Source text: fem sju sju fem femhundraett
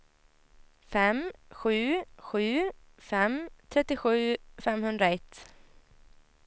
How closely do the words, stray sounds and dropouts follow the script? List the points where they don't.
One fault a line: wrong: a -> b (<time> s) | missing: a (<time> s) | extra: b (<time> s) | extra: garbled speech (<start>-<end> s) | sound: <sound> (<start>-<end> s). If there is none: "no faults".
extra: trettiosju (3.7 s)